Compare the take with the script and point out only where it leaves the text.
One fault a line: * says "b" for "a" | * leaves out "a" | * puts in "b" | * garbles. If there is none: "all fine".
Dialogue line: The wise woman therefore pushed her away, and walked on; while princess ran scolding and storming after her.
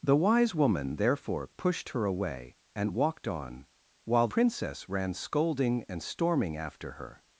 all fine